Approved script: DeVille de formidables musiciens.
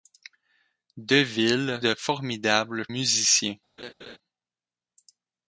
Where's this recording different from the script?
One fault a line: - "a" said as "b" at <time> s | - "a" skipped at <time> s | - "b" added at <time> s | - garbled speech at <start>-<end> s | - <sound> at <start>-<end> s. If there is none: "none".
- laugh at 3.8-4.2 s